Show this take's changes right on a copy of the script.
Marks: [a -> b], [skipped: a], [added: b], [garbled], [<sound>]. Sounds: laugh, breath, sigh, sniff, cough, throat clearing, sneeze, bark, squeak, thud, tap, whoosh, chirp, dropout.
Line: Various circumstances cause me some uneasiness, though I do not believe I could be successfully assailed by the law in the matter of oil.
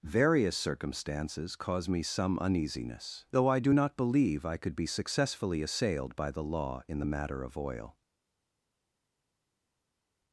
Various circumstances cause me some uneasiness, though I do not believe I could be successfully assailed by the law in the matter of oil.